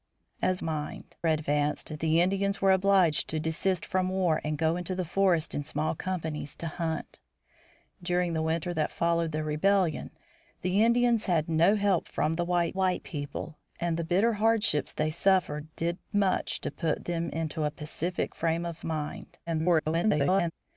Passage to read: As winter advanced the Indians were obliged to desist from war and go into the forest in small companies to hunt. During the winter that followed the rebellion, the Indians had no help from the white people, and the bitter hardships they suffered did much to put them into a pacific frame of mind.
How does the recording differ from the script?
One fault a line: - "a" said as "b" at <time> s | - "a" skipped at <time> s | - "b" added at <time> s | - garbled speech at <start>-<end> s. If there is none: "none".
- "winter" said as "mind" at 0.6 s
- "white" added at 12.7 s
- garbled speech at 19.5-20.5 s